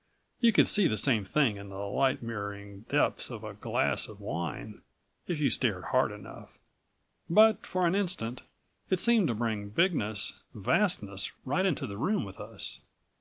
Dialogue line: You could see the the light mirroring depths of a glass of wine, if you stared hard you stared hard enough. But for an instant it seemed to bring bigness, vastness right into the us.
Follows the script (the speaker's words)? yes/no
no